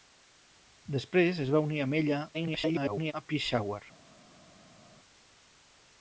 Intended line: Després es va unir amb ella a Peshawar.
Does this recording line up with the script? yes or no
no